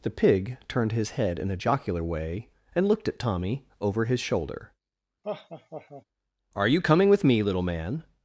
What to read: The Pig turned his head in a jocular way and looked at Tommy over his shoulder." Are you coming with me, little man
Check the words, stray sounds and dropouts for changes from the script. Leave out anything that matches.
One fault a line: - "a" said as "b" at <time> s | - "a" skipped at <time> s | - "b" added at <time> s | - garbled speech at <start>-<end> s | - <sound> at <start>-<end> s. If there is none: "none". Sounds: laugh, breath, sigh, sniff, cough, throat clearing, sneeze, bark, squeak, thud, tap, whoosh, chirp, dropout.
- laugh at 5.2-6.0 s